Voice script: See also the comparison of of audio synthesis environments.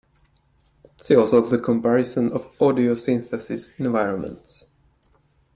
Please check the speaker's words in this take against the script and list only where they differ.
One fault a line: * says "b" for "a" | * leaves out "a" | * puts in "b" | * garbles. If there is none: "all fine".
* leaves out "of"